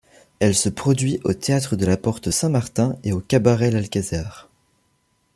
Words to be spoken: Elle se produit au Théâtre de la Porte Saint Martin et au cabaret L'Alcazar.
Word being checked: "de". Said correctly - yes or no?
yes